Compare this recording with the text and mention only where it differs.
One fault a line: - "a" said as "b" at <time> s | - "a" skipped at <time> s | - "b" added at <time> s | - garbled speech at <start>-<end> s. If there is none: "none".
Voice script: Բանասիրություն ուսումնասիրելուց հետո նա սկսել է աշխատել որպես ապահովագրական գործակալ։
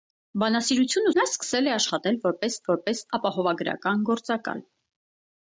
- "ուսումնասիրելուց հետո" skipped at 1.1 s
- "որպես" added at 2.7 s